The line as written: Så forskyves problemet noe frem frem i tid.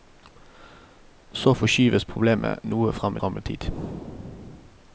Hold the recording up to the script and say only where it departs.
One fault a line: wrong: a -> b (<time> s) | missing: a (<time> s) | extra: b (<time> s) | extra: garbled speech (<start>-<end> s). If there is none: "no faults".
no faults